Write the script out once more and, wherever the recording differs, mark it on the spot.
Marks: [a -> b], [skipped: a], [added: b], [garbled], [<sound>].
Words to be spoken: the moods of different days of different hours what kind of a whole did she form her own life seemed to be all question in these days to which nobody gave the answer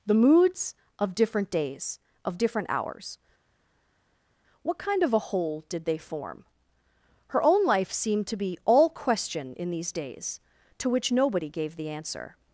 the moods of different days of different hours what kind of a whole did [she -> they] form her own life seemed to be all question in these days to which nobody gave the answer